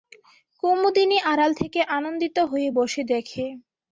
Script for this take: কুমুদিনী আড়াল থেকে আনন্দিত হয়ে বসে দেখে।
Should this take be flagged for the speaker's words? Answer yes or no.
no